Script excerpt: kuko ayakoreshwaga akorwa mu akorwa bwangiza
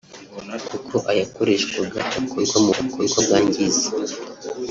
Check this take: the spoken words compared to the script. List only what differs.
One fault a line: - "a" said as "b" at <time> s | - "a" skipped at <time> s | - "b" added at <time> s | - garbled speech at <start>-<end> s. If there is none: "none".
none